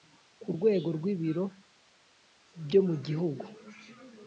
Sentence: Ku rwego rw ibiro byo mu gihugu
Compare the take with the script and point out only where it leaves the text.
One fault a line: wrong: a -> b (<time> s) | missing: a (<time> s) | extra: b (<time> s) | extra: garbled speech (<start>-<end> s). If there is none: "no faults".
no faults